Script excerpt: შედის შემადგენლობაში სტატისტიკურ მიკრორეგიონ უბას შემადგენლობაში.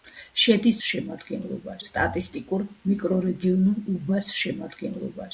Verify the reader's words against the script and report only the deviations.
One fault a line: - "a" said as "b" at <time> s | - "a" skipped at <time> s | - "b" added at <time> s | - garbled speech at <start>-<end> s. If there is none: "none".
none